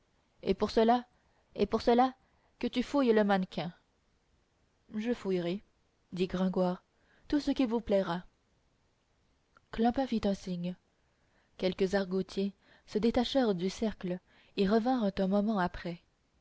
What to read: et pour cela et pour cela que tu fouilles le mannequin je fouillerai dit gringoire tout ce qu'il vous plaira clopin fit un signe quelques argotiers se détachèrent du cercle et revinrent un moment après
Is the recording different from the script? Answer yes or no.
no